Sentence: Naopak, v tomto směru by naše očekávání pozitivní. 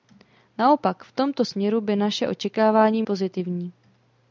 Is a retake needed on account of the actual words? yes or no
no